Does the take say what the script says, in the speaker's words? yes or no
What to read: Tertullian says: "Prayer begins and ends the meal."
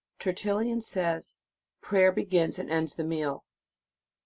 yes